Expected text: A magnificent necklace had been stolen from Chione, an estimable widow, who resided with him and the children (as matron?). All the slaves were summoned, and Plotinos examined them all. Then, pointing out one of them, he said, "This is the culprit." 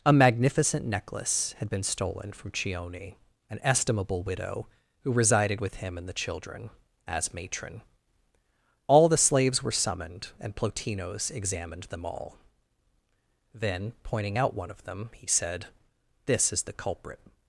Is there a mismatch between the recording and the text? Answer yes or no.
no